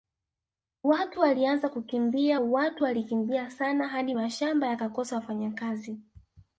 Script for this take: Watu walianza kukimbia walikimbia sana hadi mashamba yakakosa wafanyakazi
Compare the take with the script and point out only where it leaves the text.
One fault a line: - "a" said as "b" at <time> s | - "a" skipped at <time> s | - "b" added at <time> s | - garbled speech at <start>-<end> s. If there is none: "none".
- "watu" added at 2.4 s